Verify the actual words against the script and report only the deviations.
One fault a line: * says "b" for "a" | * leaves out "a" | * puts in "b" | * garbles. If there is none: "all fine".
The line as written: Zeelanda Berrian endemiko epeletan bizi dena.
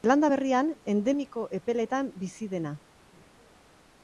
all fine